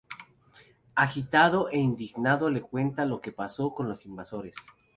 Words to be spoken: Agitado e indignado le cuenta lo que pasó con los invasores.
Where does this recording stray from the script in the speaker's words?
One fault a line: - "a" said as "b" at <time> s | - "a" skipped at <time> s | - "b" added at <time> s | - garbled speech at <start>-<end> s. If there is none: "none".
none